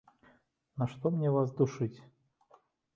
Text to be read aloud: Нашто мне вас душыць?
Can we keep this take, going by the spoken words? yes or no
yes